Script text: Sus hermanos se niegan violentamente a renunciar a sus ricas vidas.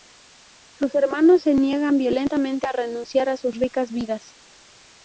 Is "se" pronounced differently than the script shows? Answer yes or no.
no